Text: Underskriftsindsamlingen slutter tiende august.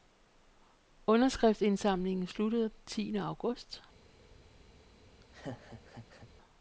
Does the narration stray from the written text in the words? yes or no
no